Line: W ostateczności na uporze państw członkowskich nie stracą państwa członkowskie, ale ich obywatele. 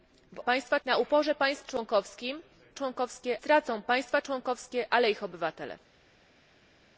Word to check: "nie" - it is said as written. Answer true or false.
false